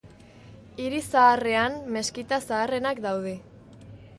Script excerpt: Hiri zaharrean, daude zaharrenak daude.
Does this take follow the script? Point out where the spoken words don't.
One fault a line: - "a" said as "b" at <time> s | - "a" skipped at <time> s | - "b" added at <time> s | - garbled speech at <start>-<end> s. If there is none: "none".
- "daude" said as "meskita" at 2.0 s